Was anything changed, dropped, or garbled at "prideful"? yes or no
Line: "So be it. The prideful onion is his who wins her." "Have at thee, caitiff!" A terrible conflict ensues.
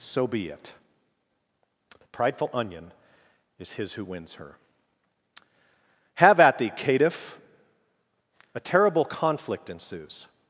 no